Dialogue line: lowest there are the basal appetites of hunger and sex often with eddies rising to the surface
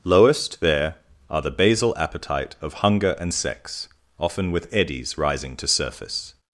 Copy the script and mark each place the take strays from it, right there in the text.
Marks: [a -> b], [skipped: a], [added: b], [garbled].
lowest there are the basal [appetites -> appetite] of hunger and sex often with eddies rising to [skipped: the] surface